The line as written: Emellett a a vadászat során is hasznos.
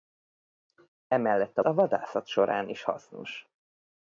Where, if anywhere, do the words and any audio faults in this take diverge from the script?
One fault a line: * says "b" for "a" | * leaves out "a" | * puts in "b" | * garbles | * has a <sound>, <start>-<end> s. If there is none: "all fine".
all fine